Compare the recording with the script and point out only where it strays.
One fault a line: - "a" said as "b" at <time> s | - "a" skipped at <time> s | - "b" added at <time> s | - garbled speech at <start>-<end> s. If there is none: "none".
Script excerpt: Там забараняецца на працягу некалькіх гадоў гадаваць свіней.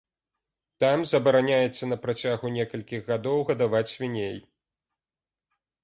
none